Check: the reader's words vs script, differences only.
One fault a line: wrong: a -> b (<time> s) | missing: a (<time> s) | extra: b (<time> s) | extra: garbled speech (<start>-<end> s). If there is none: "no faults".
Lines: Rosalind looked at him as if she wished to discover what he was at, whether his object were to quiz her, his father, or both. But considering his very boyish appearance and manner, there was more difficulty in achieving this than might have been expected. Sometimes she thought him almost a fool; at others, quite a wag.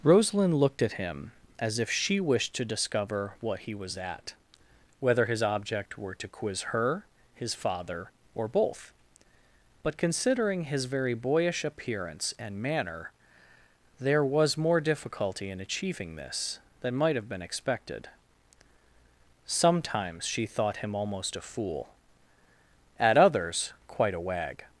no faults